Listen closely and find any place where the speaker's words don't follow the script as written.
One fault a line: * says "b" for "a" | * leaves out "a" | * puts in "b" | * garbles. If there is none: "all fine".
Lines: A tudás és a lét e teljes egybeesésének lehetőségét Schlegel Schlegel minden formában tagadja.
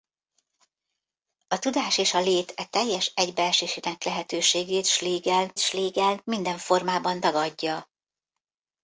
all fine